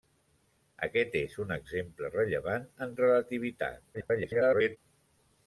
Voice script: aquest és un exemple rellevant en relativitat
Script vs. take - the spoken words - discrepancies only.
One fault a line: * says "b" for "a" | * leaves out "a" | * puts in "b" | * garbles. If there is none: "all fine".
* garbles